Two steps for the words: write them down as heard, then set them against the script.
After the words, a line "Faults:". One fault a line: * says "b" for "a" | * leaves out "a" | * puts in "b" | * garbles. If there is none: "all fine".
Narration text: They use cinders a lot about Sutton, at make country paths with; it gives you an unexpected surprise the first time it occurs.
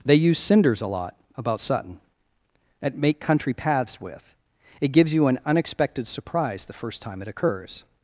They use cinders a lot about Sutton, at make country paths with; it gives you an unexpected surprise the first time it occurs.
Faults:
all fine